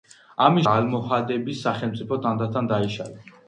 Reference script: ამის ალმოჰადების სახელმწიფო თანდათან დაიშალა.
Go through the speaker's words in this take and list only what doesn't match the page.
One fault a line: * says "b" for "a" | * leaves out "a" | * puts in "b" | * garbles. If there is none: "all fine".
all fine